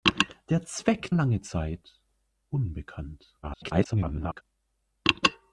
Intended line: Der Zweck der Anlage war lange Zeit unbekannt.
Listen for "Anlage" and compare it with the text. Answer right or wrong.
wrong